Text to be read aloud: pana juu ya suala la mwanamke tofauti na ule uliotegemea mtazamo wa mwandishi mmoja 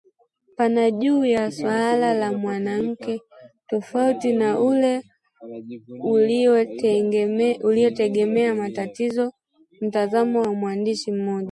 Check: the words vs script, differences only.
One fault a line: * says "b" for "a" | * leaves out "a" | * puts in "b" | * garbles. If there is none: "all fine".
all fine